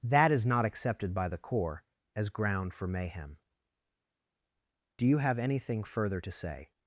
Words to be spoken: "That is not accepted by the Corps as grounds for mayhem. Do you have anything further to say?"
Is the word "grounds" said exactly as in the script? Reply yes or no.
no